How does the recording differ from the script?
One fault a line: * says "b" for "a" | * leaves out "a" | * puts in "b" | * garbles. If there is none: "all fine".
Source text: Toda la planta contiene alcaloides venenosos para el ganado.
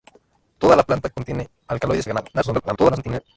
* leaves out "venenosos para"
* garbles